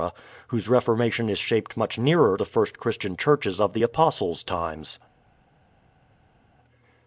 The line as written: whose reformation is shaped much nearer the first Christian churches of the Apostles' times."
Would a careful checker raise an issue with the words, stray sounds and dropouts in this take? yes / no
no